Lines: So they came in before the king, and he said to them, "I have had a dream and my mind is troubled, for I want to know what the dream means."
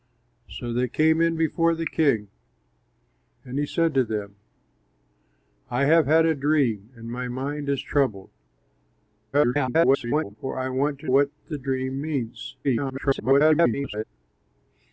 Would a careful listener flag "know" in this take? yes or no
yes